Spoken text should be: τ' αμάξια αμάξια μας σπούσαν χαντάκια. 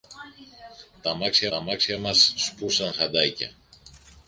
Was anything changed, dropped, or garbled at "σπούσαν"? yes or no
no